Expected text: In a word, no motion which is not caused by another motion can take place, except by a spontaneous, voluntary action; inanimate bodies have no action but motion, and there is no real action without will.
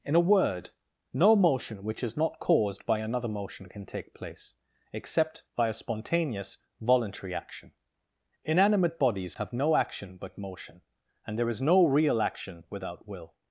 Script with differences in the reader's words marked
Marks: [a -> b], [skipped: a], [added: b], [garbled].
In a word, no motion which is not caused by another motion can take place, except by a spontaneous, voluntary action; inanimate bodies have no action but motion, and there is no real action without will.